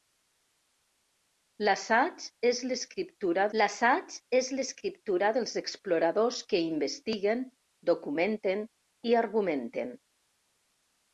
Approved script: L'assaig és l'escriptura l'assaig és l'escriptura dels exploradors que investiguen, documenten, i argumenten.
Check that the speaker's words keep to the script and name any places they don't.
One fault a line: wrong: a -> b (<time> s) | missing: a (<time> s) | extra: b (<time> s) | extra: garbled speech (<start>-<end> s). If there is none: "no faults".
no faults